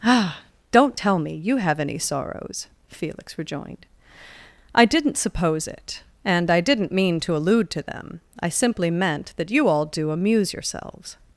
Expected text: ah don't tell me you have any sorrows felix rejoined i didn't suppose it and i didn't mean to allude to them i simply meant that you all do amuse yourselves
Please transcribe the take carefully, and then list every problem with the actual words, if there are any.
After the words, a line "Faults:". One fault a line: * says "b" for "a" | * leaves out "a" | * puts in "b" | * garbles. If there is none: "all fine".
ah don't tell me you have any sorrows felix rejoined i didn't suppose it and i didn't mean to allude to them i simply meant that you all do amuse yourselves
Faults:
all fine